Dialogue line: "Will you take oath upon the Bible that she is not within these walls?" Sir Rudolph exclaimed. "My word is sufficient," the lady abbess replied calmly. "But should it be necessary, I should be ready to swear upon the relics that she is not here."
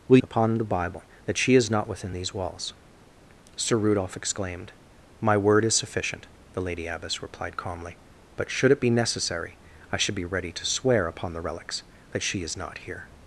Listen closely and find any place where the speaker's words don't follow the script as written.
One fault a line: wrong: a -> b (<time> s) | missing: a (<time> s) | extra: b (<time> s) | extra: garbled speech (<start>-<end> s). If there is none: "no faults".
missing: you take oath (0.2 s)